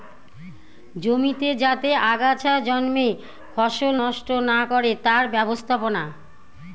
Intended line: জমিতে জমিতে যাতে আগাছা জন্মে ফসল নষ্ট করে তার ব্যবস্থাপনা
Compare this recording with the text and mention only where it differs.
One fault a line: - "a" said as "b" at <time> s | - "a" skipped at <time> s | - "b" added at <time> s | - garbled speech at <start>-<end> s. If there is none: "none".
- "জমিতে" skipped at 1.5 s
- "না" added at 4.5 s